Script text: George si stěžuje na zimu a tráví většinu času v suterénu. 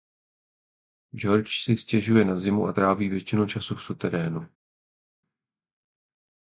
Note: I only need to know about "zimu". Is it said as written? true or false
true